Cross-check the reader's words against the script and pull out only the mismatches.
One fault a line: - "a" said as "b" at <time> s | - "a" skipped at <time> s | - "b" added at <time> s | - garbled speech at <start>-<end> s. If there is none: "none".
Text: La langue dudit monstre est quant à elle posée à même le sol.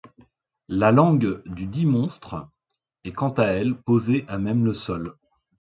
none